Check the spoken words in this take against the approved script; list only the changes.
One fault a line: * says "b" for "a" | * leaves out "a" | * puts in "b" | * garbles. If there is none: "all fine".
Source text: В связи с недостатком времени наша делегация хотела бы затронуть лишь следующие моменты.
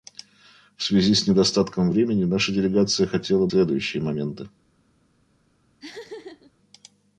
* leaves out "бы затронуть лишь"